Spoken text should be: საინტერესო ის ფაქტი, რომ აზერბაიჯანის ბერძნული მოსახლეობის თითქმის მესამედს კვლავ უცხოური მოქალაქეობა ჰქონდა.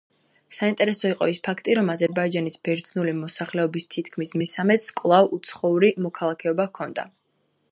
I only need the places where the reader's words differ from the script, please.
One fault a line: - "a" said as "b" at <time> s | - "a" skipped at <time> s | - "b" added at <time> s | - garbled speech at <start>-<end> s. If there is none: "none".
- "იყო" added at 1.1 s